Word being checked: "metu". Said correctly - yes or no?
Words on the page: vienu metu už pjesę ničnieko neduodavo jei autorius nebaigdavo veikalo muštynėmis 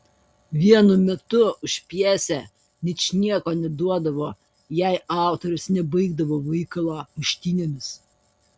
yes